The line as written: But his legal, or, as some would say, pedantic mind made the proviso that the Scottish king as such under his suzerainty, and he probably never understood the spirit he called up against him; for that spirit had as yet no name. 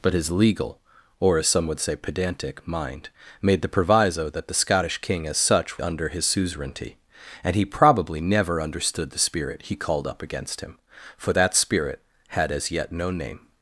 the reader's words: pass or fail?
pass